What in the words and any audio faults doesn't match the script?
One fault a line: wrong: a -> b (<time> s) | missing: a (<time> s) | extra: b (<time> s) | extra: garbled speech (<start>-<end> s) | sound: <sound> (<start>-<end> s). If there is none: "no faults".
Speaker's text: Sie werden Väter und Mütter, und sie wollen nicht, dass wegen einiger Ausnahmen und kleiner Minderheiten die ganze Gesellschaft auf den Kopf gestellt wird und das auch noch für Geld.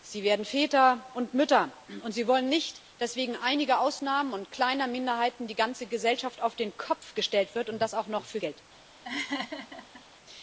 sound: laugh (9.0-10.0 s)